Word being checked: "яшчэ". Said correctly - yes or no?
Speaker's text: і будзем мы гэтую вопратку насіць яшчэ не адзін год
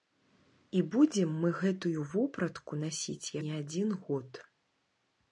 no